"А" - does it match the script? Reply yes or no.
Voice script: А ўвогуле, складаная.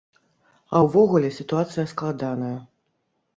yes